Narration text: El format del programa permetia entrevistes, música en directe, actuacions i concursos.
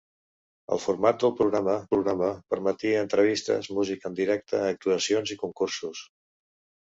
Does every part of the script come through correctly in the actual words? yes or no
no